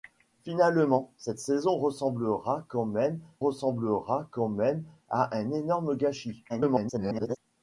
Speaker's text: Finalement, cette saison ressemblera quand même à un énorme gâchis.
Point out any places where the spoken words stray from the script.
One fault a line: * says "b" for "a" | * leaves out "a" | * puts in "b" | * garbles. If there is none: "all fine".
* puts in "ressemblera quand même"
* garbles